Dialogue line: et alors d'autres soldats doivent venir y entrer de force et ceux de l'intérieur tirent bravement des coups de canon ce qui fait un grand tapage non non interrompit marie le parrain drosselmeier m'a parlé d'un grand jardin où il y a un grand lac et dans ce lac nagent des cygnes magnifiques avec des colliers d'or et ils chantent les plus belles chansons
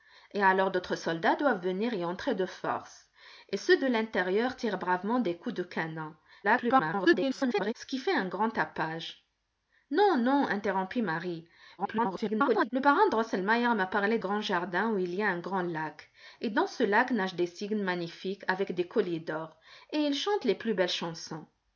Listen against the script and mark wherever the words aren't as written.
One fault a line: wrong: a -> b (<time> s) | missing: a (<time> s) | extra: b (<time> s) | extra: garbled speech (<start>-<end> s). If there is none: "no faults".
extra: garbled speech (6.4-7.7 s)
extra: garbled speech (11.8-12.7 s)
missing: d'un (14.2 s)